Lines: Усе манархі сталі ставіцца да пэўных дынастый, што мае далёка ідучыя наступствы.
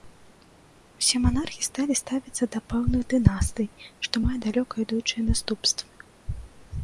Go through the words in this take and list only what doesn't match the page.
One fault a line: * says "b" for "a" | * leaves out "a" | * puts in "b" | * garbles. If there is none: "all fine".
all fine